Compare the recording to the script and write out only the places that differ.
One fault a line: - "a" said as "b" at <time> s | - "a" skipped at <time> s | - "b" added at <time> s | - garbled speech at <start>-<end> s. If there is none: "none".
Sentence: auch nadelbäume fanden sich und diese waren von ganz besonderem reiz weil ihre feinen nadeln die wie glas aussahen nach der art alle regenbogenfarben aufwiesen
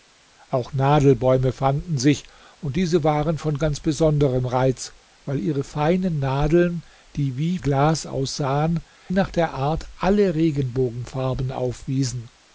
none